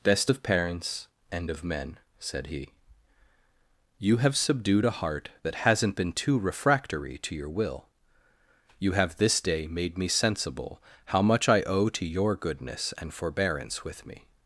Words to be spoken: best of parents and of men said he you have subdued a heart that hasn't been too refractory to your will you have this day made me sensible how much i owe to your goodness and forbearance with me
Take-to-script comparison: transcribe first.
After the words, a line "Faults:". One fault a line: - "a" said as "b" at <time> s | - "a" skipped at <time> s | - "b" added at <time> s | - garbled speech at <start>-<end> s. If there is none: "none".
best of parents and of men said he you have subdued a heart that hasn't been too refractory to your will you have this day made me sensible how much i owe to your goodness and forbearance with me
Faults:
none